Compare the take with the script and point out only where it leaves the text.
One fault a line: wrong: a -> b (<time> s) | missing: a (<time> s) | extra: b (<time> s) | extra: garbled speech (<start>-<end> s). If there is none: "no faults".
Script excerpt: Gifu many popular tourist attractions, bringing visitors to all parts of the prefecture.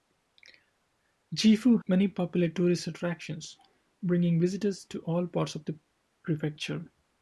no faults